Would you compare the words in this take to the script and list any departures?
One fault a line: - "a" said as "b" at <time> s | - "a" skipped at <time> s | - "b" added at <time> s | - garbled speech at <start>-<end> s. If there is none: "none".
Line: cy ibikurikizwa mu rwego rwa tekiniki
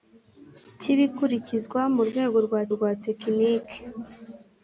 - "rwa" added at 2.7 s